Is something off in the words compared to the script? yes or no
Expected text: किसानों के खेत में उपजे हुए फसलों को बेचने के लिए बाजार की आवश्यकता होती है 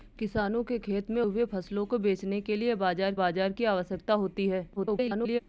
yes